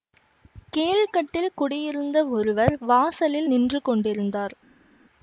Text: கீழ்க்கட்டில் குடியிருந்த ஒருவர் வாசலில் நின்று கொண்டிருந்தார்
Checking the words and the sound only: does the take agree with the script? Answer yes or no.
yes